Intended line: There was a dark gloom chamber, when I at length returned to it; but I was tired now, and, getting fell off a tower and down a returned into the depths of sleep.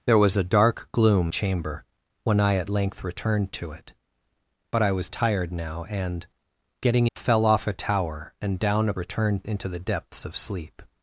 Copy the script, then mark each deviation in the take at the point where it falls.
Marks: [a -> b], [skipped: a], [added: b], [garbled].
There was a dark gloom chamber, when I at length returned to it; but I was tired now, and, getting fell off a tower and down a returned into the depths of sleep.